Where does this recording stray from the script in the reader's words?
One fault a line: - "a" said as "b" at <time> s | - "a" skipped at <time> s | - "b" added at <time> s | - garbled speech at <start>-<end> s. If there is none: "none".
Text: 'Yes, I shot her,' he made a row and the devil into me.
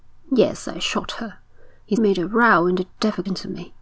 none